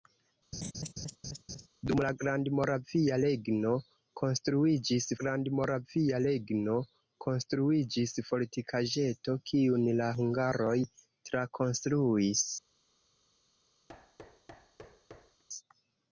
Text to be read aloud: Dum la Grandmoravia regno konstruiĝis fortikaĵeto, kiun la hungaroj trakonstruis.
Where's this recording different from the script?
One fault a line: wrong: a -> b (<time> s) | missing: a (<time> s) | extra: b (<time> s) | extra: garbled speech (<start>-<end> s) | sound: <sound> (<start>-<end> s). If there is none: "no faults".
sound: laugh (0.5-1.7 s)
extra: Grandmoravia regno konstruiĝis (5.2 s)
sound: thud (13.9-15.4 s)